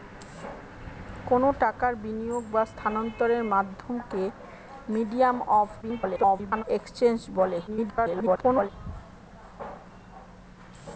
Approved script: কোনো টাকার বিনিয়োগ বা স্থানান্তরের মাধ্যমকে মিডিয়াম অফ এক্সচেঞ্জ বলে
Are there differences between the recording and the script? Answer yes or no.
yes